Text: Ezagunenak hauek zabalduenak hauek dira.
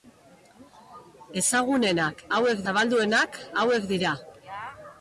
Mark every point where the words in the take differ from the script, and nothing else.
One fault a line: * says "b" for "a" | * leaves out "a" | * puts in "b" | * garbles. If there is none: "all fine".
all fine